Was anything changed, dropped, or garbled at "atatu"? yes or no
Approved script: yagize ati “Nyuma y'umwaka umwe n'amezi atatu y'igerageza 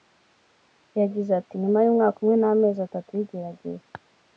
no